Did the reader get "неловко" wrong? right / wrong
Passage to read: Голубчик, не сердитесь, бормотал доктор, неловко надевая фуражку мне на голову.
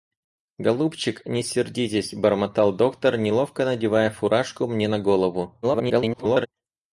right